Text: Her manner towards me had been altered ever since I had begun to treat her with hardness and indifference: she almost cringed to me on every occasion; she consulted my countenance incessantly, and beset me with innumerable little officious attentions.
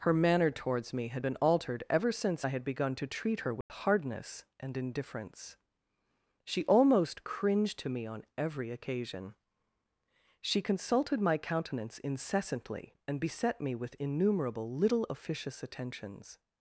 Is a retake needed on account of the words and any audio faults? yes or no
yes